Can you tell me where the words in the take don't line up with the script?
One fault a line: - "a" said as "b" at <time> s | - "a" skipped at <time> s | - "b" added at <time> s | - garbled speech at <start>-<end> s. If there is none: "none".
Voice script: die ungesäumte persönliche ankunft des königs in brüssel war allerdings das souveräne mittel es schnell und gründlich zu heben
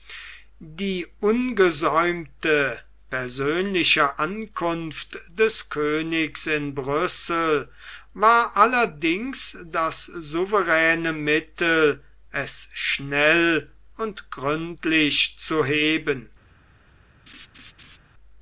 none